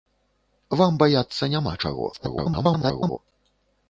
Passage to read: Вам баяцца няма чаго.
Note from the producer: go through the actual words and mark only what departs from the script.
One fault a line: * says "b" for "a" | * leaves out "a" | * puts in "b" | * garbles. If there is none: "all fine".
* garbles